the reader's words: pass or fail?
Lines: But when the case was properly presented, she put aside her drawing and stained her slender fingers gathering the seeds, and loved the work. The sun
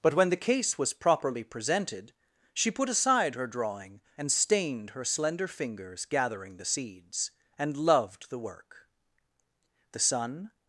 pass